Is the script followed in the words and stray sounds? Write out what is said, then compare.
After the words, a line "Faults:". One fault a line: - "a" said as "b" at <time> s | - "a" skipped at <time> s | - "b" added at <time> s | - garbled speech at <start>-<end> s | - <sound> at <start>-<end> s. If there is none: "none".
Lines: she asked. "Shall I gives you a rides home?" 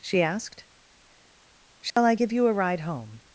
she asked. "Shall I give you a ride home?"
Faults:
- dropout at 1.9-2.0 s
- "gives" said as "give" at 2.1 s
- "rides" said as "ride" at 2.5 s